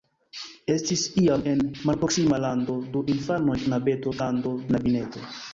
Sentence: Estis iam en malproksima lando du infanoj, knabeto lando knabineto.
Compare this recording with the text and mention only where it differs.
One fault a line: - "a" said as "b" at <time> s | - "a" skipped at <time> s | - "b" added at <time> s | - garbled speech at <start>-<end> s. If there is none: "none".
none